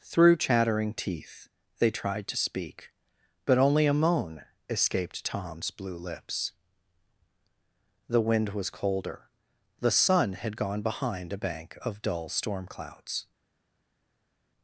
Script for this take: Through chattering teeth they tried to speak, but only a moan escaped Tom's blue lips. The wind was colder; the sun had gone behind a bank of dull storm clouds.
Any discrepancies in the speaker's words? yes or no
no